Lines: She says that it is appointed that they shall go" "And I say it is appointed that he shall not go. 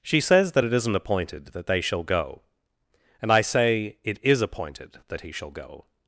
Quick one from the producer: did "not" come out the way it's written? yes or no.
no